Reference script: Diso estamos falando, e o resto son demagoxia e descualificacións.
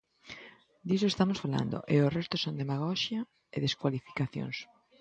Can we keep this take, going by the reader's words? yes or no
yes